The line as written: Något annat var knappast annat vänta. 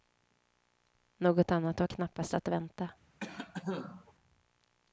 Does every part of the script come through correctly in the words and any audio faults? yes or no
no